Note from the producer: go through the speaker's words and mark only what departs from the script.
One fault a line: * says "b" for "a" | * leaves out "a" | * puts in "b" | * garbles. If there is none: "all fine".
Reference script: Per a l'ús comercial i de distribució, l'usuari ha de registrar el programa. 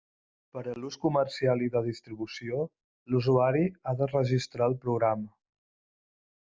all fine